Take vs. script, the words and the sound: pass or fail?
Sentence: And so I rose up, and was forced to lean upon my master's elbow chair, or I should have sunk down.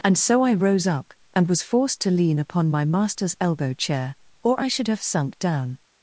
pass